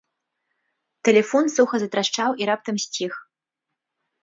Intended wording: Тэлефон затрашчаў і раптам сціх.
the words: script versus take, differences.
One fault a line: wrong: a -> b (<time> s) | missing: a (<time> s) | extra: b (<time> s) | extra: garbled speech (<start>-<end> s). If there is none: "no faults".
extra: суха (1.6 s)